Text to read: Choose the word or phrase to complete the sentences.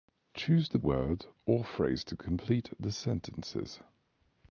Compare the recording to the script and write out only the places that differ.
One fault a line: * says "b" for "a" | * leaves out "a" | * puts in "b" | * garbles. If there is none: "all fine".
all fine